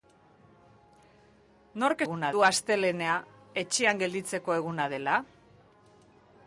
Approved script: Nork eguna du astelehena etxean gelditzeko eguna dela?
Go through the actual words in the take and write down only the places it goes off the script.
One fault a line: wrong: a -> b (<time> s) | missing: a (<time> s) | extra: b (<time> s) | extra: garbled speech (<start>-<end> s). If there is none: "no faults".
no faults